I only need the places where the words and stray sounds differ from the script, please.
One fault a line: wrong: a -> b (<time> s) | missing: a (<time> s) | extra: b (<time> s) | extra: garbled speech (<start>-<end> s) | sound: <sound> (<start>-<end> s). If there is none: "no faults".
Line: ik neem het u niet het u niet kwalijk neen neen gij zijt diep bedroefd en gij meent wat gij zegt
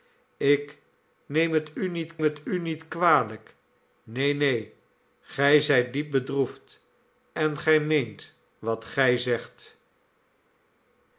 no faults